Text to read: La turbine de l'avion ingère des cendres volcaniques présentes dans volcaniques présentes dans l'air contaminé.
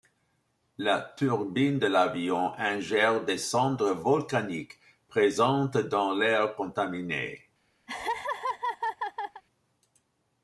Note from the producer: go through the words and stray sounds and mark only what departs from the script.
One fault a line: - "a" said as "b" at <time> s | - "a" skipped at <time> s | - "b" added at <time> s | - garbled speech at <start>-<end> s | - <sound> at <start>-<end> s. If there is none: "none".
- "volcaniques présentes dans" skipped at 6.1 s
- laugh at 7.9-9.4 s